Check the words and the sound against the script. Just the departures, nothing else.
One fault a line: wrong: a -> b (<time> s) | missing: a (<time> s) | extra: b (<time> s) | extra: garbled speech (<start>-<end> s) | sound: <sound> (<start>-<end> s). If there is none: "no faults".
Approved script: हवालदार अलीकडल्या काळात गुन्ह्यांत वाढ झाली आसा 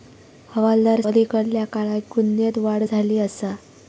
no faults